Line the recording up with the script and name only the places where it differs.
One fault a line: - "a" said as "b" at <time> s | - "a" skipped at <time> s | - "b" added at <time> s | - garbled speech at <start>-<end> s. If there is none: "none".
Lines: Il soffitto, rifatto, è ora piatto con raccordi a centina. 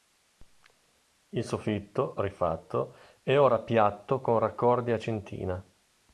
none